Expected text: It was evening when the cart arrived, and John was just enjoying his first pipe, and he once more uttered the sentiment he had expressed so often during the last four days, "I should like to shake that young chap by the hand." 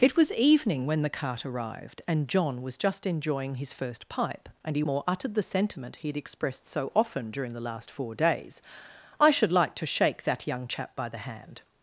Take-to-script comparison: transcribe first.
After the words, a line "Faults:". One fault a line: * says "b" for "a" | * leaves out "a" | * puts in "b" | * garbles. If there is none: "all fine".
It was evening when the cart arrived, and John was just enjoying his first pipe, and he more uttered the sentiment he had expressed so often during the last four days, "I should like to shake that young chap by the hand."
Faults:
* leaves out "once"